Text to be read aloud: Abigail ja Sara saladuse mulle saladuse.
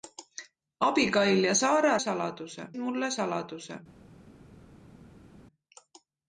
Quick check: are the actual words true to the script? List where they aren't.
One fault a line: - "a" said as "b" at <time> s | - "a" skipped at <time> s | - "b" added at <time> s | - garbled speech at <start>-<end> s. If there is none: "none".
none